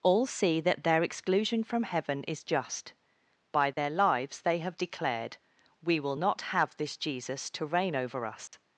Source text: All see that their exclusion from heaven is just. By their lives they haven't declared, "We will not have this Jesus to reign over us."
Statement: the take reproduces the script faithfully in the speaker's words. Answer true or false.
false